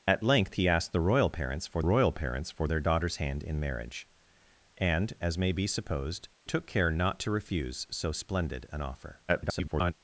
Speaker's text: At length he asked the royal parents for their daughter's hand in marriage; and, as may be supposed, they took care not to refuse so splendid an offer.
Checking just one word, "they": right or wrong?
wrong